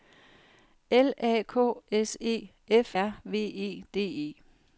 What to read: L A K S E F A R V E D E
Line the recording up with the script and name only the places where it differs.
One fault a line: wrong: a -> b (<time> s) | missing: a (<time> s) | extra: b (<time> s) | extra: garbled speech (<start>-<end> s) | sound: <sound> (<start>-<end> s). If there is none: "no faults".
missing: A (3.0 s)